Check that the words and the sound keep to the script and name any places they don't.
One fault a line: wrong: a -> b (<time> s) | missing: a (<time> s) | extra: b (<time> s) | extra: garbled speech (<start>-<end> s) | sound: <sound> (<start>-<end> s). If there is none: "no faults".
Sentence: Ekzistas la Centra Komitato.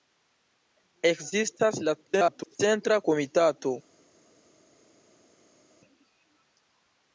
extra: garbled speech (2.1-2.6 s)